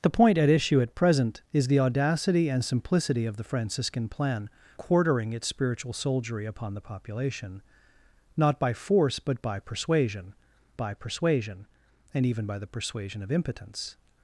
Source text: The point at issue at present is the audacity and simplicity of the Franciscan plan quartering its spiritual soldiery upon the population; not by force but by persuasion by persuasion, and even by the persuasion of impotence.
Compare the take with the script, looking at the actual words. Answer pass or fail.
pass